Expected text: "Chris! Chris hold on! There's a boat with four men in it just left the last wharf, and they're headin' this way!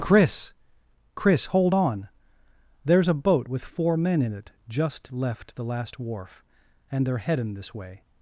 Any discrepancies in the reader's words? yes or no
no